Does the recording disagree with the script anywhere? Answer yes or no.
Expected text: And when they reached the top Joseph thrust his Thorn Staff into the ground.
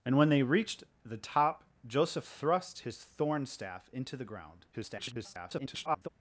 yes